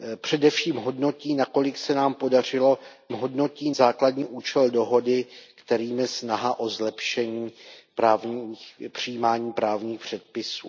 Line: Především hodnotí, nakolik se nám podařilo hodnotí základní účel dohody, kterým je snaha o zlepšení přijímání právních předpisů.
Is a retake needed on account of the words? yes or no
no